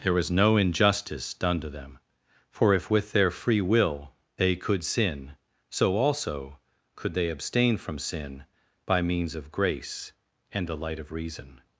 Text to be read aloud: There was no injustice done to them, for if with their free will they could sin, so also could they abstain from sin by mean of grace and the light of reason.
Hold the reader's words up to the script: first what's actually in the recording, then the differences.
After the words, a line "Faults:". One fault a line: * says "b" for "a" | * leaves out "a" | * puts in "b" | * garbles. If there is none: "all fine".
There was no injustice done to them, for if with their free will they could sin, so also could they abstain from sin by means of grace and the light of reason.
Faults:
* says "means" for "mean"